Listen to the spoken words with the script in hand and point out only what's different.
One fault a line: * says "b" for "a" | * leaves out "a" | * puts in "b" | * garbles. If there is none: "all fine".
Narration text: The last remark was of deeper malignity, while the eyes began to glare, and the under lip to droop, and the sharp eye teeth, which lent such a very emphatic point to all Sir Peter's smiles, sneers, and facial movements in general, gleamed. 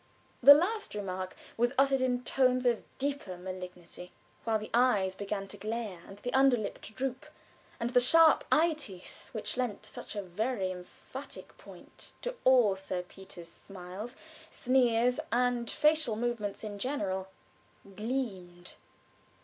* puts in "uttered in tones"